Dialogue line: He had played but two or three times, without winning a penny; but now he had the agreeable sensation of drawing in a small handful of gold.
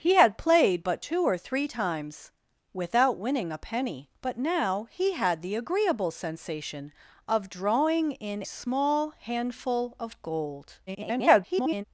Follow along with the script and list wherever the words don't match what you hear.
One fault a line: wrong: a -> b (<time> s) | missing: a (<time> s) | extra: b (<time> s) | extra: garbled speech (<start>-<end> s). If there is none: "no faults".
missing: a (8.4 s)
extra: garbled speech (10.9-11.8 s)